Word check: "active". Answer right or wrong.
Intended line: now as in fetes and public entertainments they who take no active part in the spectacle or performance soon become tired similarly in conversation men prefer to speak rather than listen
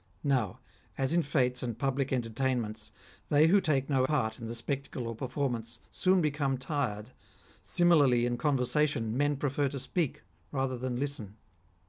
wrong